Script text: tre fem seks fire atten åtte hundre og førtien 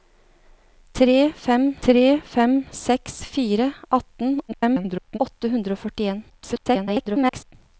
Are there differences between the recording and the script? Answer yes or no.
yes